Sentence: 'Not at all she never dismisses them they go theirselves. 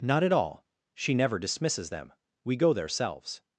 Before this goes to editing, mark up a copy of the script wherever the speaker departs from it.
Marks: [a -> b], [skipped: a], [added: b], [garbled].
'Not at all she never dismisses them [they -> we] go theirselves.